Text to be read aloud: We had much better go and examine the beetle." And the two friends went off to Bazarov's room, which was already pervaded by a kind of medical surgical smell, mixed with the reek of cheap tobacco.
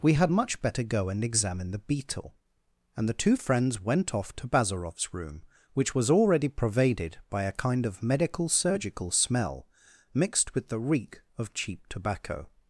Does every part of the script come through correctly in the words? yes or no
yes